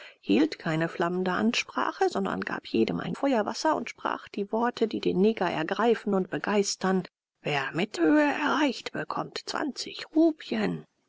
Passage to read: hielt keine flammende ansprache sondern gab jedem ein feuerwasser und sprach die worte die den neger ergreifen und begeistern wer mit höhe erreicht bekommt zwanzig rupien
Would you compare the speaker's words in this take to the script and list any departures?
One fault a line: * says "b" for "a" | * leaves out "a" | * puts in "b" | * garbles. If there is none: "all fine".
all fine